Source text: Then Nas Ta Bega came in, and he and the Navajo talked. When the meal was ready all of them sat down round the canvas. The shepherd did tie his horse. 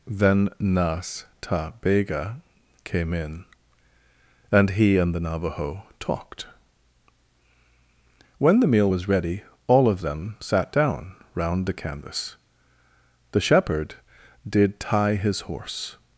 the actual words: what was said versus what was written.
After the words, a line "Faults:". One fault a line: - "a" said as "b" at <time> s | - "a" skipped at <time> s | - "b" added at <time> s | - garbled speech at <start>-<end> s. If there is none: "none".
Then Nas Ta Bega came in, and he and the Navajo talked. When the meal was ready all of them sat down round the canvas. The shepherd did tie his horse.
Faults:
none